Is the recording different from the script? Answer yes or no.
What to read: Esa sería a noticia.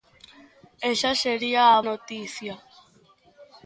no